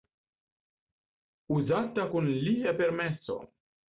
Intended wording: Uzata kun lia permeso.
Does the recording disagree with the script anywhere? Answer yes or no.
no